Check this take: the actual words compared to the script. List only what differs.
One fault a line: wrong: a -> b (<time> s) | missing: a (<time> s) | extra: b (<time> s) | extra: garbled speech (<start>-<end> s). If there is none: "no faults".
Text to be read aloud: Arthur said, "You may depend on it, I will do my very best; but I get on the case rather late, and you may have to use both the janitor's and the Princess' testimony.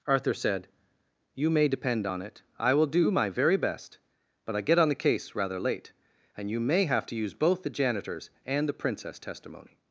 no faults